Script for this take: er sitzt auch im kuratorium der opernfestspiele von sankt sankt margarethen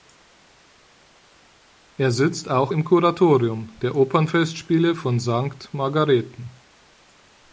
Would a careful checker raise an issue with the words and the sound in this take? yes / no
yes